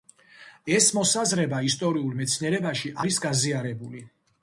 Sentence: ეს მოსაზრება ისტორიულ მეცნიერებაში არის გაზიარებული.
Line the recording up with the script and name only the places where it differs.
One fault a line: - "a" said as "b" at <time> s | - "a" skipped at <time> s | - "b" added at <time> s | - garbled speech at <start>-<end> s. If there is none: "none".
none